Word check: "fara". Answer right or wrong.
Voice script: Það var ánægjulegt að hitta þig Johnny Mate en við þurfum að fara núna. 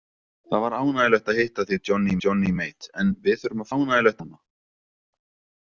wrong